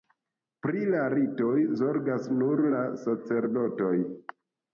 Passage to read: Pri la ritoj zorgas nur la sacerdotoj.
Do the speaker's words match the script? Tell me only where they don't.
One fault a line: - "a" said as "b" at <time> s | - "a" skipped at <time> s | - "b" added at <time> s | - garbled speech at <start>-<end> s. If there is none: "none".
none